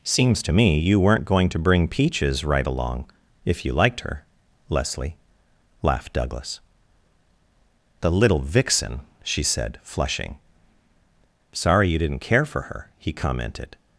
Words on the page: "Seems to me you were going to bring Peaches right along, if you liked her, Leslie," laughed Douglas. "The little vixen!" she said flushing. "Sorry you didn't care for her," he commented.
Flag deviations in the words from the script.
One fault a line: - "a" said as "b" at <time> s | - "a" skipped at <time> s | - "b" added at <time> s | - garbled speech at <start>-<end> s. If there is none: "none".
- "were" said as "weren't" at 1.0 s